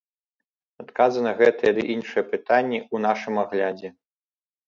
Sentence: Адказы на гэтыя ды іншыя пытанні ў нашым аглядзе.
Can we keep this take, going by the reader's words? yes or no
yes